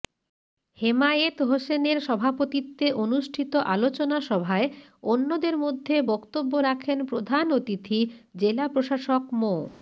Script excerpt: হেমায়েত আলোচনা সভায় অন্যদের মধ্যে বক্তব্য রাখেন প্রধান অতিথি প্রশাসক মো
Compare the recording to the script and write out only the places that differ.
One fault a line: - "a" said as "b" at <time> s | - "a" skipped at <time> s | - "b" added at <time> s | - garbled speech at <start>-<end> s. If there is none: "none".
- "হোসেনের সভাপতিত্বে অনুষ্ঠিত" added at 1.4 s
- "জেলা" added at 8.4 s